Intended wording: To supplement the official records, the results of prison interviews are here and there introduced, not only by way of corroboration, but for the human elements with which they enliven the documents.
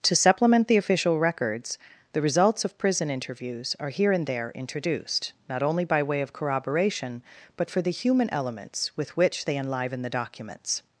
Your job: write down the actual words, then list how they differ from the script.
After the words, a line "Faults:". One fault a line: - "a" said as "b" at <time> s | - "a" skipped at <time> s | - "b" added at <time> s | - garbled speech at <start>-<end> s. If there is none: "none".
To supplement the official records, the results of prison interviews are here and there introduced, not only by way of corroboration, but for the human elements with which they enliven the documents.
Faults:
none